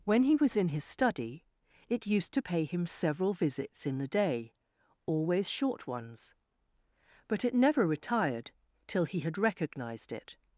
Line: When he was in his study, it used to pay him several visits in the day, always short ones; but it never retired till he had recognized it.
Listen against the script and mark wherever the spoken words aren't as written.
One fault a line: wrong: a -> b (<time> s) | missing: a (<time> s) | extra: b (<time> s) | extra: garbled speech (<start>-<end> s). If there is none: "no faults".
no faults